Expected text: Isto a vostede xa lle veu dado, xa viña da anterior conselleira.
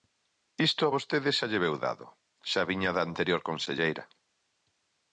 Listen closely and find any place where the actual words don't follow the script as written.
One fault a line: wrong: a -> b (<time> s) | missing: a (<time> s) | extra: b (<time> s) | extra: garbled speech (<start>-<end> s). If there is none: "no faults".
no faults